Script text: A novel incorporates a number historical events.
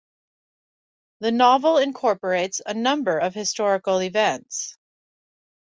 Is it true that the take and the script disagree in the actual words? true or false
true